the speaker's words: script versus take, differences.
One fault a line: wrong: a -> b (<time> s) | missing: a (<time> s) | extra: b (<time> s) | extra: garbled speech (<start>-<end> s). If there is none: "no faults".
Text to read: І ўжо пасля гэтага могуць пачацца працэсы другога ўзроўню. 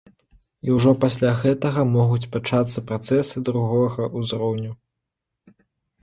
no faults